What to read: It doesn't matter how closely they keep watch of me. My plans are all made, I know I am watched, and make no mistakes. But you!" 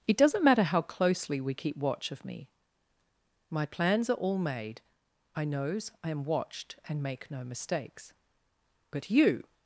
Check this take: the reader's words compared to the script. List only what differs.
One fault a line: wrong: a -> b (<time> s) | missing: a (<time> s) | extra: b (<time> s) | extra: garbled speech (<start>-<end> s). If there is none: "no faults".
wrong: they -> we (1.4 s)
wrong: know -> knows (5.5 s)